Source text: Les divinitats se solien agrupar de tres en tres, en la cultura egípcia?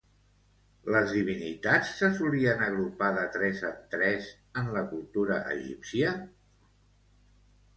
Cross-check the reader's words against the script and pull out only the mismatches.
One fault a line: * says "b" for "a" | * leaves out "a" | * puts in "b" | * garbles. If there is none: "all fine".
all fine